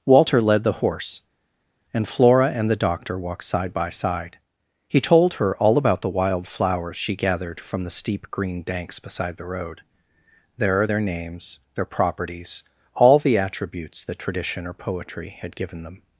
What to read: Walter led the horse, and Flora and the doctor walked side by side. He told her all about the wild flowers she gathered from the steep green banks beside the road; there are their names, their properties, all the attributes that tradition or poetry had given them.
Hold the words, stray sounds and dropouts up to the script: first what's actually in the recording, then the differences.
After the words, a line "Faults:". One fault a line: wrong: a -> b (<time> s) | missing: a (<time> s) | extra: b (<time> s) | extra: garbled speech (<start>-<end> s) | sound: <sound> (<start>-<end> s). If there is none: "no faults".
Walter led the horse, and Flora and the doctor walked side by side. He told her all about the wild flowers she gathered from the steep green banks beside the road; there are their names, their properties, all the attributes that tradition or poetry had given them.
Faults:
no faults